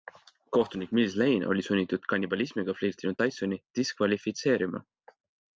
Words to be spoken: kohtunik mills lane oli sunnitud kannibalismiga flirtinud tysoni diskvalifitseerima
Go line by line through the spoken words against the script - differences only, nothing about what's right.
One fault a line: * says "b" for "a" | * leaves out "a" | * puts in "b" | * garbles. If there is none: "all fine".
all fine